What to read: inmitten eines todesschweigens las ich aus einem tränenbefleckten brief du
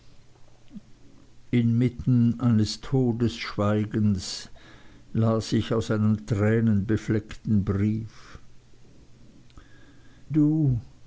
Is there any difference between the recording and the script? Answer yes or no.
no